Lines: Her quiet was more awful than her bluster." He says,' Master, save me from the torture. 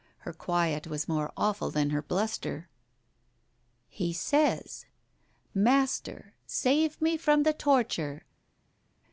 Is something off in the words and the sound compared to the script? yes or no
no